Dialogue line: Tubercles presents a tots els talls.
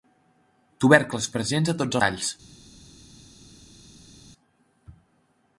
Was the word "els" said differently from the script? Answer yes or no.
yes